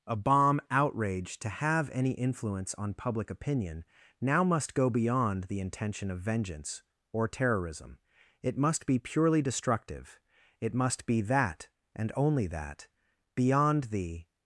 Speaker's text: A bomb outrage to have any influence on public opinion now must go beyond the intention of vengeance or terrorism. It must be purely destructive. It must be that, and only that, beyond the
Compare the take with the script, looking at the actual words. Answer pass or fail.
pass